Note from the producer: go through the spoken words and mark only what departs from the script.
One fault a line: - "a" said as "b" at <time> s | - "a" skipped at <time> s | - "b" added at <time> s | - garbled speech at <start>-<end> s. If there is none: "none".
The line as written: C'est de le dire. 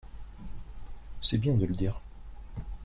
- "bien" added at 1.4 s